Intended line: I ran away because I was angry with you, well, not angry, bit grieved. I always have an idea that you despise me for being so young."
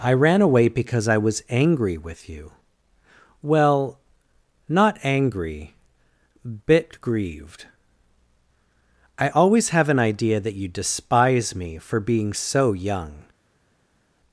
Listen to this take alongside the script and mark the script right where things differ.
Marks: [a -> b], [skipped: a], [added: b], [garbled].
I ran away because I was angry with you, well, not angry, bit grieved. I always have an idea that you despise me for being so young."